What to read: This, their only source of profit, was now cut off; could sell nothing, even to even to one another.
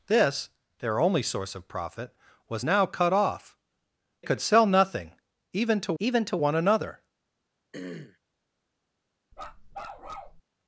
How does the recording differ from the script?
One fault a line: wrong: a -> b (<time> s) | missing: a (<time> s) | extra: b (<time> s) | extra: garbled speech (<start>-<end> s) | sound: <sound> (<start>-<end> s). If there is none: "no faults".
sound: throat clearing (7.7-8.2 s)
sound: bark (9.3-10.4 s)